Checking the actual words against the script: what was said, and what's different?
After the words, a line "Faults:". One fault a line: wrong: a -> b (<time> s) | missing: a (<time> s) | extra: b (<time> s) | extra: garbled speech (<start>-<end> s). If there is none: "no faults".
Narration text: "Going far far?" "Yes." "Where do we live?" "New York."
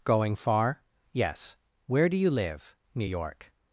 "Going far?" "Yes." "Where do you live?" "New York."
Faults:
missing: far (0.8 s)
wrong: we -> you (2.2 s)